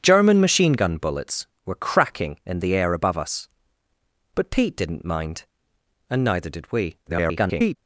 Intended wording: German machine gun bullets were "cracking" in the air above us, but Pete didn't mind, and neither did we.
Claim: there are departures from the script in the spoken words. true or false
true